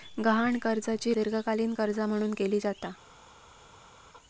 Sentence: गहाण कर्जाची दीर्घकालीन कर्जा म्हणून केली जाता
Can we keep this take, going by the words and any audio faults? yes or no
yes